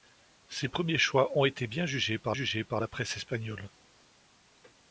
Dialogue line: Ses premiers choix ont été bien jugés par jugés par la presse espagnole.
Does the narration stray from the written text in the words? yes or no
no